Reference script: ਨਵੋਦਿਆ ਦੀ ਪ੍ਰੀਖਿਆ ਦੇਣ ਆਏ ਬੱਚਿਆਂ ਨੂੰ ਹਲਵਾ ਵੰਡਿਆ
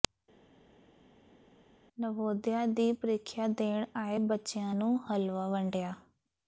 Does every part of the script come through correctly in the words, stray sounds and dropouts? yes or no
yes